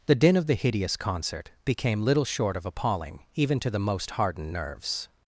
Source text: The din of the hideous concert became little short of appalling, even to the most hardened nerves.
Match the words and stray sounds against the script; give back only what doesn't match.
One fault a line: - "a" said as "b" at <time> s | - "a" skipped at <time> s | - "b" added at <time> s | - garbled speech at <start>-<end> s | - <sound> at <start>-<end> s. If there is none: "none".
none